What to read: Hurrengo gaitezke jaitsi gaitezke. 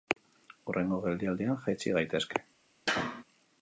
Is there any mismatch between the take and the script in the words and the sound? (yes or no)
yes